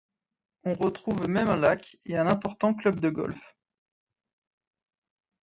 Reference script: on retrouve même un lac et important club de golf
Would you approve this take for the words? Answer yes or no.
no